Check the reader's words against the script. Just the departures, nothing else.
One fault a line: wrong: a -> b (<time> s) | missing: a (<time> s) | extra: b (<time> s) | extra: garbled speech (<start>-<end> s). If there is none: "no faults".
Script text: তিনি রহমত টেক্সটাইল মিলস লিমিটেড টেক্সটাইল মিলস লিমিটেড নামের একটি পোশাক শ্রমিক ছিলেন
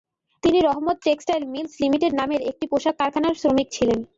missing: টেক্সটাইল মিলস লিমিটেড (2.1 s)
extra: কারখানার (3.0 s)